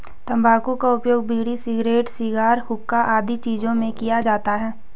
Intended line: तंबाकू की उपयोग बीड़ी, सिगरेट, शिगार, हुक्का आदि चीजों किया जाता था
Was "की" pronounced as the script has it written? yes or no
no